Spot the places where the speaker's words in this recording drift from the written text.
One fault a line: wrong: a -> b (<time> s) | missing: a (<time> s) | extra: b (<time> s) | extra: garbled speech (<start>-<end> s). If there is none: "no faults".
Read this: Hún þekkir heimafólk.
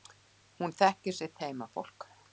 extra: sitt (1.2 s)